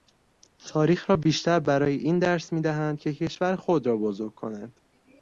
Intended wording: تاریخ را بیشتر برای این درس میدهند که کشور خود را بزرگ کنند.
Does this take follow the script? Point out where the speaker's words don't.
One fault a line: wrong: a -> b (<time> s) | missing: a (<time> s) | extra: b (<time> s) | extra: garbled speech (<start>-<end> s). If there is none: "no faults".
no faults